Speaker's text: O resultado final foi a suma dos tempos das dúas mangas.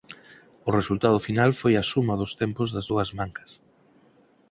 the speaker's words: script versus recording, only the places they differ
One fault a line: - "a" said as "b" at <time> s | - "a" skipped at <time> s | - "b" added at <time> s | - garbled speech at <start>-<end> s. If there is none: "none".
none